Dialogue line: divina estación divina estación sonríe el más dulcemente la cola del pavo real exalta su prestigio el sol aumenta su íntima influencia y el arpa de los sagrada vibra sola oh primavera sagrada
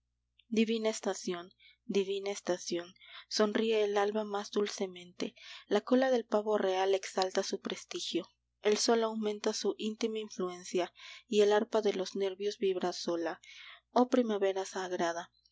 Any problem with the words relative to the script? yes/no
yes